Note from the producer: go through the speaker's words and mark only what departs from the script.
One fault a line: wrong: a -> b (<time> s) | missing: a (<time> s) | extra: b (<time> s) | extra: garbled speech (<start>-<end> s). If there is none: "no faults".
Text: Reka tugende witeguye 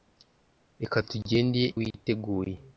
no faults